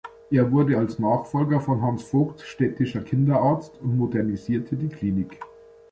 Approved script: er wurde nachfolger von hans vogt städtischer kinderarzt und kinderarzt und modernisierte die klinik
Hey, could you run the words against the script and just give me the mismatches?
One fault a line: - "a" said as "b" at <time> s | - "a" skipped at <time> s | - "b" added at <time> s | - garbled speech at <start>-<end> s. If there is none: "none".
- "als" added at 0.8 s
- "kinderarzt und" skipped at 4.0 s